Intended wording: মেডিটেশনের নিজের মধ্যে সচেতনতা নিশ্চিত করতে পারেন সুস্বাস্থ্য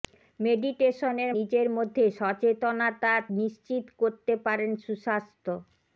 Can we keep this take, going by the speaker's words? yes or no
yes